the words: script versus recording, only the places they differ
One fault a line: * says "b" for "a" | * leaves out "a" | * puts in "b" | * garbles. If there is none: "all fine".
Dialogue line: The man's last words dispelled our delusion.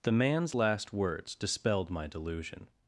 * says "my" for "our"